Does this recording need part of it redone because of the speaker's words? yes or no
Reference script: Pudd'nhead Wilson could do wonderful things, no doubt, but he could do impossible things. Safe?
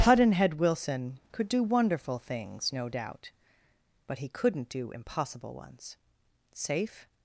yes